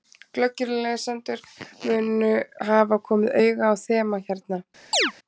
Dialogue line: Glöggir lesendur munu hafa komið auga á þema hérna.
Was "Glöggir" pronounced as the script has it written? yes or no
yes